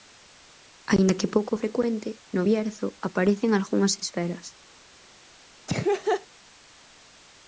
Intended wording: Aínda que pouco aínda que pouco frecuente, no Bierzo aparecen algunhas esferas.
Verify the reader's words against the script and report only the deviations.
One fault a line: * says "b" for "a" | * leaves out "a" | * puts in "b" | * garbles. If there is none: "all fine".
* leaves out "aínda que pouco"